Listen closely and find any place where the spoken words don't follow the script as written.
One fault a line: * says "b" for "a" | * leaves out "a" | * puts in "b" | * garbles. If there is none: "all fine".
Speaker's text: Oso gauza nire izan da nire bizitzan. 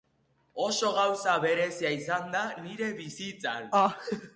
* says "berezia" for "nire"